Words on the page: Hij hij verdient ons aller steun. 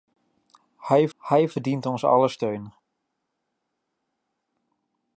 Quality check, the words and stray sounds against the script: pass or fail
pass